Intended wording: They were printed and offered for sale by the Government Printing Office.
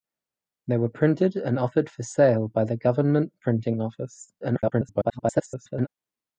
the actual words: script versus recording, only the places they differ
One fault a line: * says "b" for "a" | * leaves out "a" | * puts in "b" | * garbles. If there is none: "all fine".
* garbles